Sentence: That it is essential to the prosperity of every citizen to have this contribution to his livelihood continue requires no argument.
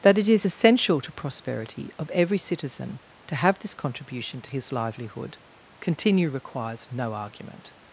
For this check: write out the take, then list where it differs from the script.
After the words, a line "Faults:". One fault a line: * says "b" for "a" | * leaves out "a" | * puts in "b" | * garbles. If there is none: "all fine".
That it is essential to prosperity of every citizen to have this contribution to his livelihood continue requires no argument.
Faults:
* leaves out "the"